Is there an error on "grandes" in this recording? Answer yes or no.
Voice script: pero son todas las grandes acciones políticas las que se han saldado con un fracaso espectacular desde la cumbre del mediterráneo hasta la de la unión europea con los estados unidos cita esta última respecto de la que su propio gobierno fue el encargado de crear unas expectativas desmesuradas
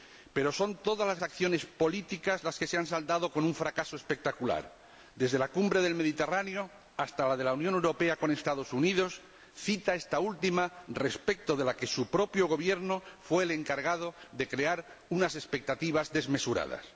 yes